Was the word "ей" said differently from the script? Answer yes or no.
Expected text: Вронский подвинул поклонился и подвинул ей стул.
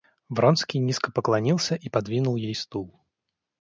no